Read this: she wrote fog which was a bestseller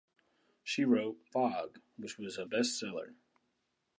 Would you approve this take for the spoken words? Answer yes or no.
yes